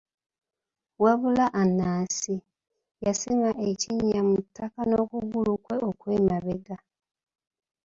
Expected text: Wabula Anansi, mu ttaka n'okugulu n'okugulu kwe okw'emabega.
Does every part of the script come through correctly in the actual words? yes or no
no